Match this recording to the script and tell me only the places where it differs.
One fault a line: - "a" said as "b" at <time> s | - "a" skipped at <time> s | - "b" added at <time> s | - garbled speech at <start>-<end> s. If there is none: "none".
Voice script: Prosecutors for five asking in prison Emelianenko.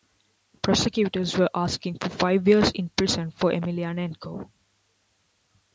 - "were asking" added at 1.4 s
- "asking" said as "years" at 2.5 s
- "for" added at 3.3 s